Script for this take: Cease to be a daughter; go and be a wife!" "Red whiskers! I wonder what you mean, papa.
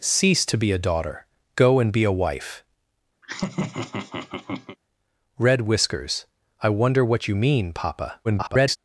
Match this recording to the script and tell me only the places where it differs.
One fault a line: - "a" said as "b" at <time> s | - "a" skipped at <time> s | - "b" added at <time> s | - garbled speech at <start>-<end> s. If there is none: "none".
- garbled speech at 8.2-8.8 s